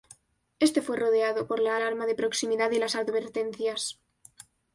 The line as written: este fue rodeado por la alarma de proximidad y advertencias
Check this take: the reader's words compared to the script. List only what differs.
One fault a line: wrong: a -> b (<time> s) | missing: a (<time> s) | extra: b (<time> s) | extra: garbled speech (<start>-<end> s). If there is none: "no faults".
extra: las (2.8 s)